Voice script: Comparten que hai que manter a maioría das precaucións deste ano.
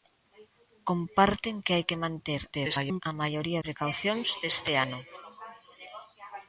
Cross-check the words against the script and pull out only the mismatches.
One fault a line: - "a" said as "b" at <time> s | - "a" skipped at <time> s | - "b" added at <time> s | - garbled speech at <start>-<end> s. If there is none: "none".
- garbled speech at 2.5-3.0 s
- "das" skipped at 3.6 s